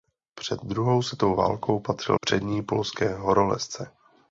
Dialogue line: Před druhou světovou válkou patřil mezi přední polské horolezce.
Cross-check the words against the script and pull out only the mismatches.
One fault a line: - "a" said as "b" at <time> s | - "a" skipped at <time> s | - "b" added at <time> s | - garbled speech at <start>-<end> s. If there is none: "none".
- "mezi" skipped at 2.2 s